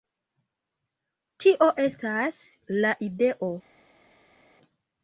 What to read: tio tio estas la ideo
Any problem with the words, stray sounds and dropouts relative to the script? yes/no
yes